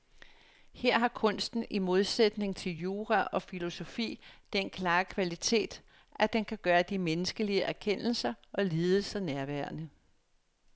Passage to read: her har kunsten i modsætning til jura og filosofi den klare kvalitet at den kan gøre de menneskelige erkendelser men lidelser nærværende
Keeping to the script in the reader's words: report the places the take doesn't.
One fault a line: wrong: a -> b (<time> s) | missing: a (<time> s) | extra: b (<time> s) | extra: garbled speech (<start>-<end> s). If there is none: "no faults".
wrong: men -> og (8.5 s)